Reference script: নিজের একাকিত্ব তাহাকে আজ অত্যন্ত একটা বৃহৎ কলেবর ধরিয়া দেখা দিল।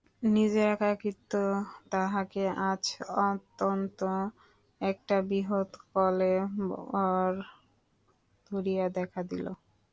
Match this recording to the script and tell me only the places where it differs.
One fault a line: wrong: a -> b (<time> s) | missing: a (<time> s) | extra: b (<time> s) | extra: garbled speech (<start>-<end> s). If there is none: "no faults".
no faults